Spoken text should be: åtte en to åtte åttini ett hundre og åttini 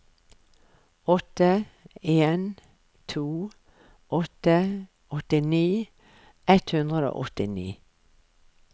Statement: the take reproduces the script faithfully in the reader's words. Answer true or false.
true